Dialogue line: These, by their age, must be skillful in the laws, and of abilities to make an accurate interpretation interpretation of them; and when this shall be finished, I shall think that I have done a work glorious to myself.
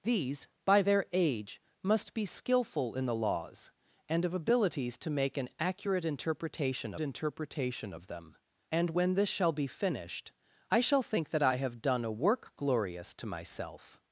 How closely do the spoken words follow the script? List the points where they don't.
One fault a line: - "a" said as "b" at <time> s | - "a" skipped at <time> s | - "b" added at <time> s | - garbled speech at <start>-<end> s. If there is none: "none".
none